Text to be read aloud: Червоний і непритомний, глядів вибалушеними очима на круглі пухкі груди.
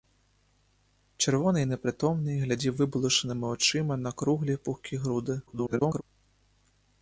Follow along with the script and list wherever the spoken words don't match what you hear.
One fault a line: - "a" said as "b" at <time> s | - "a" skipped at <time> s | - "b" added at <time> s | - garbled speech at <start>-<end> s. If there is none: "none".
- garbled speech at 5.5-6.0 s